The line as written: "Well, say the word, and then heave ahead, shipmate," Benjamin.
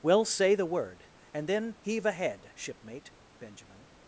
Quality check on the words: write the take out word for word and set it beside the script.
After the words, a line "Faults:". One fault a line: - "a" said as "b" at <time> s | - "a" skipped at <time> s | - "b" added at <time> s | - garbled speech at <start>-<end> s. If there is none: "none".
"Well, say the word, and then heave ahead, shipmate," Benjamin.
Faults:
none